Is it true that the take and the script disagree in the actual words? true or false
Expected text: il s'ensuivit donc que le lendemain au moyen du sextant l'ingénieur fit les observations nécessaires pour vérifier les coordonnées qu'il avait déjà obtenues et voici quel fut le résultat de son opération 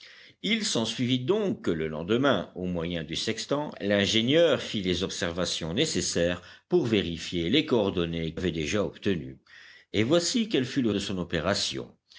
true